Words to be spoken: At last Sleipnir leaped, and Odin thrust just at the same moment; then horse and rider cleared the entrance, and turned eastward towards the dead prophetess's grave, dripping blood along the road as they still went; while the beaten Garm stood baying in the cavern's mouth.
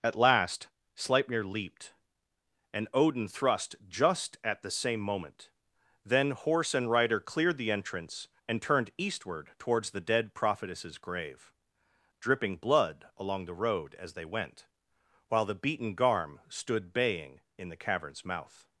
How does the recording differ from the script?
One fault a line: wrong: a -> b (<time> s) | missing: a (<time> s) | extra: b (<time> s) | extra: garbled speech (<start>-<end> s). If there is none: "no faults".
missing: still (14.2 s)